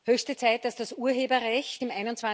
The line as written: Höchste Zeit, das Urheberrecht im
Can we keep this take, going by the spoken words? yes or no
no